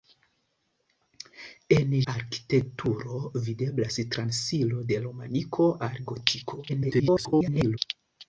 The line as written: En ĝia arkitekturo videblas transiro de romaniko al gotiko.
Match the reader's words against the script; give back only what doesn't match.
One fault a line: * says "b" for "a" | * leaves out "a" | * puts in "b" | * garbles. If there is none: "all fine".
* leaves out "ĝia"
* garbles